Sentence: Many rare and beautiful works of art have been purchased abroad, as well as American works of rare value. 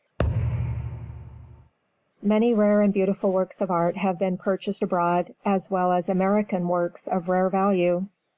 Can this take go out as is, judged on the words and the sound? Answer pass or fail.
fail